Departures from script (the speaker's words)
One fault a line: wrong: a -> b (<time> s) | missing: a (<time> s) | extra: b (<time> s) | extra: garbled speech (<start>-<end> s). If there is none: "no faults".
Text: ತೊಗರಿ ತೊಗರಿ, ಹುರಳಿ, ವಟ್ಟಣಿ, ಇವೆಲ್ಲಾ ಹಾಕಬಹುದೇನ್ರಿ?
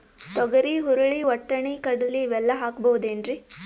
missing: ತೊಗರಿ (0.8 s)
extra: ಕಡಲಿ (1.8 s)